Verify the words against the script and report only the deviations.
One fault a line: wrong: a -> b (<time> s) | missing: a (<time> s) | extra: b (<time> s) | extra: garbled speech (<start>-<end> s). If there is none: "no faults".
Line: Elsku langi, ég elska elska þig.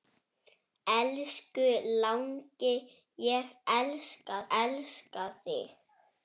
no faults